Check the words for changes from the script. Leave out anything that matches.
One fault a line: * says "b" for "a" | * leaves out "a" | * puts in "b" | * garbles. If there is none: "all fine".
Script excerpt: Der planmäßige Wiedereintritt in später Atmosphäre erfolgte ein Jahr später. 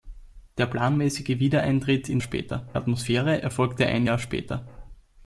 all fine